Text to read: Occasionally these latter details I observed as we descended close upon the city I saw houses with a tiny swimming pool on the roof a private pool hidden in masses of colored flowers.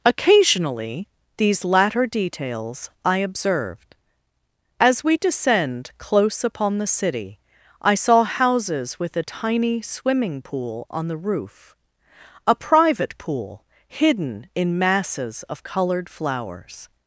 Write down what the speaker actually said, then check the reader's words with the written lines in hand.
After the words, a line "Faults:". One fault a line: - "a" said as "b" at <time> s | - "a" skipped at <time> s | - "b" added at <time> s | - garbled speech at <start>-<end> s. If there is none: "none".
Occasionally these latter details I observed as we descend close upon the city I saw houses with a tiny swimming pool on the roof a private pool hidden in masses of colored flowers.
Faults:
- "descended" said as "descend" at 5.2 s